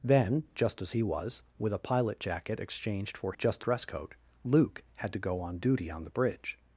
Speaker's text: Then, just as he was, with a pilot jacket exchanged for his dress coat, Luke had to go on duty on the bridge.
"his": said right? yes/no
no